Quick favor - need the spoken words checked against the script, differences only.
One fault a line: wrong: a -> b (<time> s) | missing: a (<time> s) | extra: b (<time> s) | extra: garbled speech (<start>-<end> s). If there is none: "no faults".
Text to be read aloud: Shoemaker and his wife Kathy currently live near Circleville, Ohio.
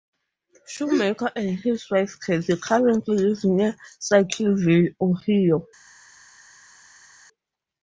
no faults